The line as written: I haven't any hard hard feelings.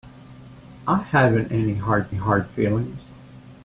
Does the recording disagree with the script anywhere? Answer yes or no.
no